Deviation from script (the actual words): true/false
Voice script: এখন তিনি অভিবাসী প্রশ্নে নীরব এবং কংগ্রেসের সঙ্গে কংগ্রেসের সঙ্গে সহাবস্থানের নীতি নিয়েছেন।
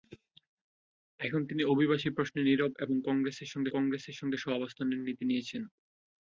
false